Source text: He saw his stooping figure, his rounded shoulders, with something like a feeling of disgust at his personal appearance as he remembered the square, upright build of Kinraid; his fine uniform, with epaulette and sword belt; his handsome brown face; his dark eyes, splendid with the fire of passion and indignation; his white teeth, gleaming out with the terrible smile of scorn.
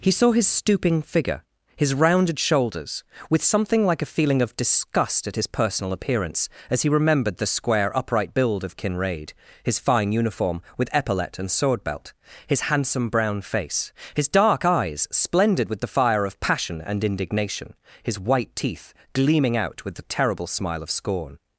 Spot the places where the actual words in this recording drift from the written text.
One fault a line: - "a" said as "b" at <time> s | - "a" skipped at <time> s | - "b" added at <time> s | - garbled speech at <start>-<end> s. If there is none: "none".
none